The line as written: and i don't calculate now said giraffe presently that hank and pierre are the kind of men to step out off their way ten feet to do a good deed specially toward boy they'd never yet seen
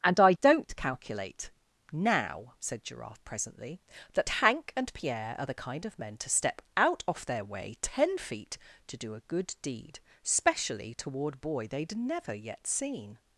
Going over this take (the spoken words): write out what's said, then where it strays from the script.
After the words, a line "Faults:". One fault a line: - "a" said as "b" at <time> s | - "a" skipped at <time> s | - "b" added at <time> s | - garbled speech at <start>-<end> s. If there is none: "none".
and i don't calculate now said giraffe presently that hank and pierre are the kind of men to step out off their way ten feet to do a good deed specially toward boy they'd never yet seen
Faults:
none